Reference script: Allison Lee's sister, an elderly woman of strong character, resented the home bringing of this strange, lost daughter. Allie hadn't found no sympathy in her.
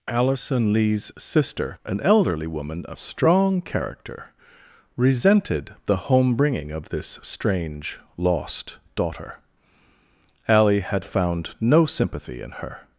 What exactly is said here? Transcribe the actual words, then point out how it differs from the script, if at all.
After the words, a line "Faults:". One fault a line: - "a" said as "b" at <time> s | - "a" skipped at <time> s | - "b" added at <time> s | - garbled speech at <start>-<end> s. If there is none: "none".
Allison Lee's sister, an elderly woman of strong character, resented the home bringing of this strange, lost daughter. Allie had found no sympathy in her.
Faults:
- "hadn't" said as "had" at 10.8 s